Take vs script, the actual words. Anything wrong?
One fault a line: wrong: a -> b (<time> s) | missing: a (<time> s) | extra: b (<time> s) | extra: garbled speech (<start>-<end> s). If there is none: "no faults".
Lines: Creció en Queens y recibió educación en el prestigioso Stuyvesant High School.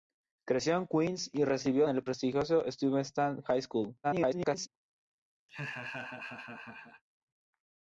missing: educación (1.9 s)
extra: garbled speech (4.0-4.7 s)